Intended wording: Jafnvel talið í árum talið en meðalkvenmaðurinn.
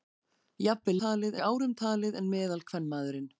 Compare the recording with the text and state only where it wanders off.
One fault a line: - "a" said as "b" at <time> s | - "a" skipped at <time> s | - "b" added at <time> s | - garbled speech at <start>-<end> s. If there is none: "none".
none